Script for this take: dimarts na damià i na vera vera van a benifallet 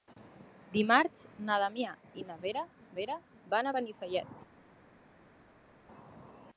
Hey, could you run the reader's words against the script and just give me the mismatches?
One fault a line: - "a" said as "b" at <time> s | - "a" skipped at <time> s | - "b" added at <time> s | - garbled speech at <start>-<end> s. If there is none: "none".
none